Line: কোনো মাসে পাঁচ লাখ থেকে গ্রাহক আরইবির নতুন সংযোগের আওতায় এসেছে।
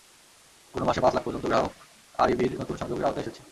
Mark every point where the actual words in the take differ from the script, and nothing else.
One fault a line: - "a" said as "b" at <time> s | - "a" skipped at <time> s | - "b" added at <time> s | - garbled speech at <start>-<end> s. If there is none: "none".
- "থেকে" said as "পর্যন্ত" at 1.2 s